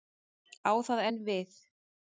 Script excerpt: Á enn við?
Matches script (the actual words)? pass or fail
fail